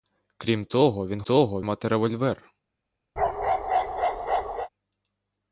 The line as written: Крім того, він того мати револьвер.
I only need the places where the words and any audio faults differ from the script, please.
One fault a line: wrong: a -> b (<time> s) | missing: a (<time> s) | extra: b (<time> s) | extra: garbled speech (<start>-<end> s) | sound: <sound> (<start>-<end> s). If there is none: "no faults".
sound: bark (3.2-4.7 s)